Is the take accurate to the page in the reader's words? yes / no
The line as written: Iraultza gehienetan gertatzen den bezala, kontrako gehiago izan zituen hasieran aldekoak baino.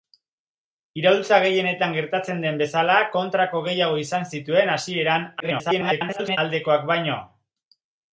no